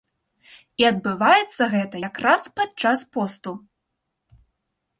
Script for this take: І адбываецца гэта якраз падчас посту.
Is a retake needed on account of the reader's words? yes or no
no